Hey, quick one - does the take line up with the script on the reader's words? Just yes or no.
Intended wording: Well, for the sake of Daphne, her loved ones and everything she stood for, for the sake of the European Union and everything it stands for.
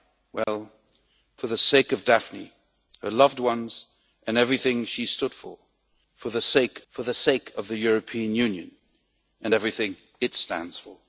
no